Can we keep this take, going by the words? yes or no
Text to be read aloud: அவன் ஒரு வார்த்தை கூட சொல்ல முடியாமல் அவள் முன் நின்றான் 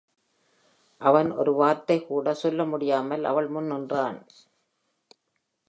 yes